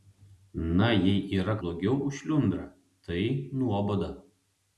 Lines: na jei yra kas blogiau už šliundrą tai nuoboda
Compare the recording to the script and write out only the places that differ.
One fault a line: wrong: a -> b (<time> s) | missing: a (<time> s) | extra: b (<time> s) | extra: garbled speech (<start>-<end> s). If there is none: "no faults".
missing: kas (1.6 s)